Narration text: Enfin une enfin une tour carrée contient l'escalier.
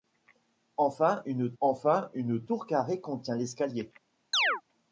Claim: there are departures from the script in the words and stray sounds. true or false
true